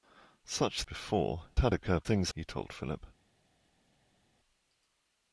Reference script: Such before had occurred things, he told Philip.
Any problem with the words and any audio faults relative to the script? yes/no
no